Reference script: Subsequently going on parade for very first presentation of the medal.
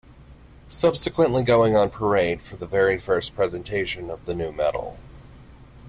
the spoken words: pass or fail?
fail